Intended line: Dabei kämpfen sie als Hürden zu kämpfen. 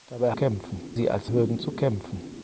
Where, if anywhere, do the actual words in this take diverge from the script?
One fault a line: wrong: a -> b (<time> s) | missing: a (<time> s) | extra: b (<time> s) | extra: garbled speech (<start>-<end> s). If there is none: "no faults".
no faults